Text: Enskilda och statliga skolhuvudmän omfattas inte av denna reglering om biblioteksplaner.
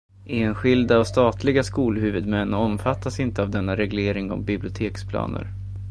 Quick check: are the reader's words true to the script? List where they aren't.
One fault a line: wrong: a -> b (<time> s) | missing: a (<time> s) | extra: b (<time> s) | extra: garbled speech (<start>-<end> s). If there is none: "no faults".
no faults